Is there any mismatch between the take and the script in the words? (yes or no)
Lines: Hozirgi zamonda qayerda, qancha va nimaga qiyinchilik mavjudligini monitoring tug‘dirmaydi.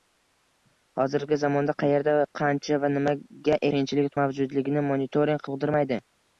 no